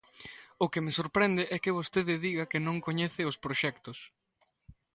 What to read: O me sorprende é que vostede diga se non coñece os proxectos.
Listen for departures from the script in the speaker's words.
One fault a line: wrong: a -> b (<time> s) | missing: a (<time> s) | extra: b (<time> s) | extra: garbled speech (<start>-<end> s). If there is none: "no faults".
extra: que (0.7 s)
wrong: se -> que (2.5 s)